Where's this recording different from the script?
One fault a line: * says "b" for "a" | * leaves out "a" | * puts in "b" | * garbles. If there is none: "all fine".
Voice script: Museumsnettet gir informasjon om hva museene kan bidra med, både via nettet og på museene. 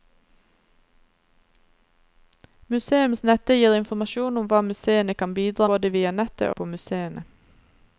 * leaves out "med"
* leaves out "og"